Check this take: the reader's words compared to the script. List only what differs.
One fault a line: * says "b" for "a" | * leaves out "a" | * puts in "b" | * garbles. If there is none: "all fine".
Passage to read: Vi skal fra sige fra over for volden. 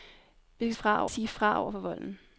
all fine